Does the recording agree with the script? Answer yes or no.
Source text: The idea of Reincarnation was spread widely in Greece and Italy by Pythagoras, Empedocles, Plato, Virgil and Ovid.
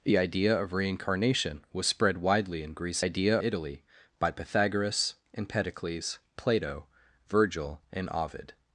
no